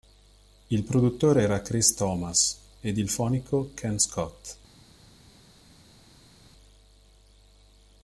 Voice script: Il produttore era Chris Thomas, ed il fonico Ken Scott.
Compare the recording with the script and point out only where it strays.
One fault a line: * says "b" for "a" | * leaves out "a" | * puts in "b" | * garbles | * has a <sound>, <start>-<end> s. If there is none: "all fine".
all fine